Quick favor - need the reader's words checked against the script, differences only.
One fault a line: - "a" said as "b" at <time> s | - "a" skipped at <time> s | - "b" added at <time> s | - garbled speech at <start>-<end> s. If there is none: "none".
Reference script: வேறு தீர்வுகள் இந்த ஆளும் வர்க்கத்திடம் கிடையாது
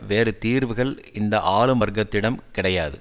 none